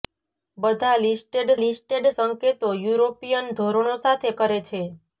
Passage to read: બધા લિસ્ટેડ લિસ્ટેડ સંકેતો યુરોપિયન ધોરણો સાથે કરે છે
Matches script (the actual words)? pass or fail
pass